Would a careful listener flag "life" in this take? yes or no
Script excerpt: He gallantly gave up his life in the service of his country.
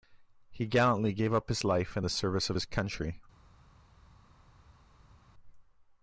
no